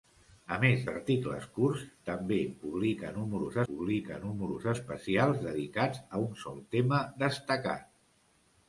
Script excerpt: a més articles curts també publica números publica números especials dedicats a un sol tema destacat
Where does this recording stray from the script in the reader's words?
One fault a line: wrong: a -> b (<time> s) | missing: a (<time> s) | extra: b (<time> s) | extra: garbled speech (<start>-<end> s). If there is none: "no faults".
no faults